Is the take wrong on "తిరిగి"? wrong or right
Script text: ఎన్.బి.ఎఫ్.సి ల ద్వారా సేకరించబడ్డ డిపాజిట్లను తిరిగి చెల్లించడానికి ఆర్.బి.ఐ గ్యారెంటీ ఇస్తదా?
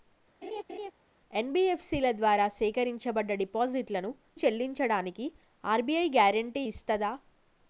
wrong